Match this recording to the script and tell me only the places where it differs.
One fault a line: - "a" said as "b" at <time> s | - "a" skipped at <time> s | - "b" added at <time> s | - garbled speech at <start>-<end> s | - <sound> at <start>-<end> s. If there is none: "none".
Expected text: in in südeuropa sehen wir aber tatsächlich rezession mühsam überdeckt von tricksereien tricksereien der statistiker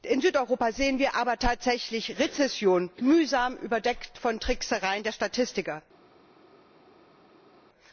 - "in" skipped at 0.2 s
- "tricksereien" skipped at 5.0 s